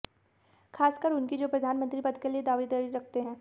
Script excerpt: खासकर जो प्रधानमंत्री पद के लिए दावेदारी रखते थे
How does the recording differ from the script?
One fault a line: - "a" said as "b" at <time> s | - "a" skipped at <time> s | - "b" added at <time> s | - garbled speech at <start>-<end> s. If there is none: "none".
- "उनकी" added at 1.1 s
- "थे" said as "हैं" at 3.2 s